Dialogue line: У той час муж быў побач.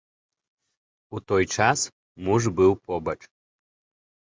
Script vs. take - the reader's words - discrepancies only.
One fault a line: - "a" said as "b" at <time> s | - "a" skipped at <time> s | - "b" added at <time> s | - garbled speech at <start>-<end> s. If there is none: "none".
none